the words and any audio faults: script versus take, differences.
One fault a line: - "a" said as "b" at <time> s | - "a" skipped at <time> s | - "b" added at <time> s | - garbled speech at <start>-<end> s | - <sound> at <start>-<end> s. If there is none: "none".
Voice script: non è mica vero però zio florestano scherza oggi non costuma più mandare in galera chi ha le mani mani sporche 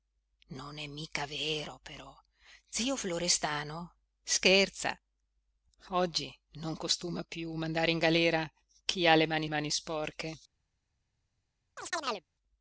- chirp at 11.8-12.2 s